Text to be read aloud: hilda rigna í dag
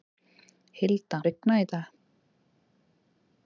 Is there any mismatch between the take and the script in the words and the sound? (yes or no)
no